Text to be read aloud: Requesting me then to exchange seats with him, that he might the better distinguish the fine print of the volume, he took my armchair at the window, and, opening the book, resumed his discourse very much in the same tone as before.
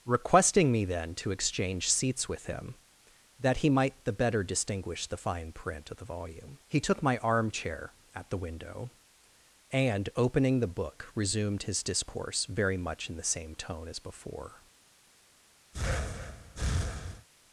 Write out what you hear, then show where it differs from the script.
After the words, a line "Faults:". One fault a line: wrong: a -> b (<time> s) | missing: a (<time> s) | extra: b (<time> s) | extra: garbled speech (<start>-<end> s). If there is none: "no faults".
Requesting me then to exchange seats with him, that he might the better distinguish the fine print of the volume, he took my armchair at the window, and, opening the book, resumed his discourse very much in the same tone as before.
Faults:
no faults